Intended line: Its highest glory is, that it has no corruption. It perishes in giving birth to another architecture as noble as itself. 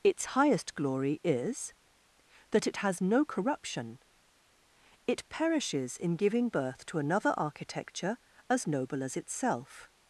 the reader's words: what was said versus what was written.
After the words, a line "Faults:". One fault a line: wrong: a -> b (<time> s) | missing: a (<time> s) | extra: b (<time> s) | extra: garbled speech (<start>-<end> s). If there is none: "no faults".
Its highest glory is, that it has no corruption. It perishes in giving birth to another architecture as noble as itself.
Faults:
no faults